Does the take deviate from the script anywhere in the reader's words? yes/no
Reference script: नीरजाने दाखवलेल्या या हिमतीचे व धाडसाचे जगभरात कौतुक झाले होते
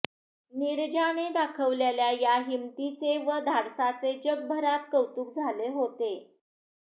no